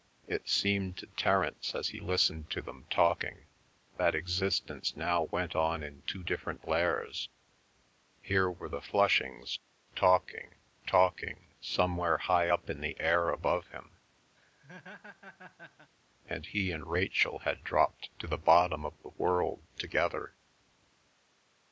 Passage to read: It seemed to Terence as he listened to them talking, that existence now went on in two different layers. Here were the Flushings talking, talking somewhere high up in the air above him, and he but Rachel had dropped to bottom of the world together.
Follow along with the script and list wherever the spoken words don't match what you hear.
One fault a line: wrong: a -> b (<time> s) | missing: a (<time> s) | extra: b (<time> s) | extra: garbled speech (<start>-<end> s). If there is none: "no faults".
wrong: but -> and (16.7 s)
extra: the (18.3 s)